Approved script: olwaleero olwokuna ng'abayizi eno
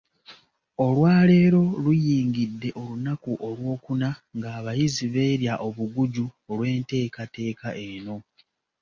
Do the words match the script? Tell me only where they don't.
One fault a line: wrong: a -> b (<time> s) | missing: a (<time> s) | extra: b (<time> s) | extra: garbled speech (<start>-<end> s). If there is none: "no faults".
extra: luyingidde olunaku (1.8 s)
extra: beerya obuguju olw'enteekateeka (5.1 s)